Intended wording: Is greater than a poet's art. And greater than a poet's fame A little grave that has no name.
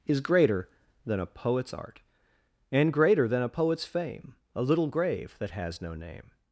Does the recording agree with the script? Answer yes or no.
yes